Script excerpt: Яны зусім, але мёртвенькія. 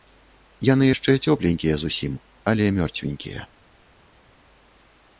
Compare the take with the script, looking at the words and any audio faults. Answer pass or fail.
fail